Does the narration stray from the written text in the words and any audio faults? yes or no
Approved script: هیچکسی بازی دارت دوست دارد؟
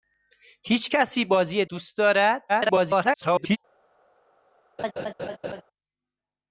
yes